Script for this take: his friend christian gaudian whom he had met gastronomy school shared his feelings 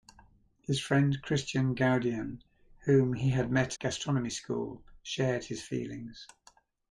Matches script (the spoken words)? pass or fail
pass